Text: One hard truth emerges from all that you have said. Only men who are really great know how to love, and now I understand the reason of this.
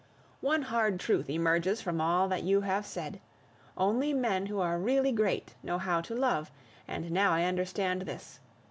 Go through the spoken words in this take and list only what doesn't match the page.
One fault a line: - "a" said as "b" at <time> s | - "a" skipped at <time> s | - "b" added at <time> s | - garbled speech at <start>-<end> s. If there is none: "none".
- "the reason of" skipped at 8.0 s